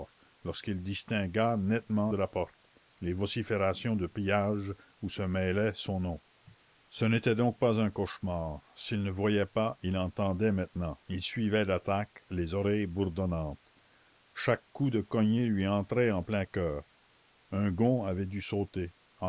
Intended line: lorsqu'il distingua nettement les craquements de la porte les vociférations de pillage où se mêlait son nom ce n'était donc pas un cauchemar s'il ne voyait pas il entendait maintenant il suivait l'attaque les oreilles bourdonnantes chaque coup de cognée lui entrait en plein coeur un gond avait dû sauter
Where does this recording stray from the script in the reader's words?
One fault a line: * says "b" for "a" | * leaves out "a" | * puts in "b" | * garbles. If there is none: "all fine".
* leaves out "les craquements"